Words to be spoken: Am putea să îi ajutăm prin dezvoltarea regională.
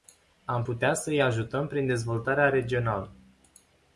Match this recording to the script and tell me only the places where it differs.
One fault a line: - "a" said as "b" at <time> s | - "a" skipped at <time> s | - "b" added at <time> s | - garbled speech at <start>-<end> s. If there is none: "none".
none